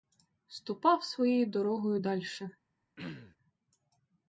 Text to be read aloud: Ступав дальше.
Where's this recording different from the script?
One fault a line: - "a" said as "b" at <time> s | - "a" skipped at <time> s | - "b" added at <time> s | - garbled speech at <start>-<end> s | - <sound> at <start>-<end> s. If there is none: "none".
- "своєю дорогою" added at 1.0 s
- throat clearing at 3.0-3.4 s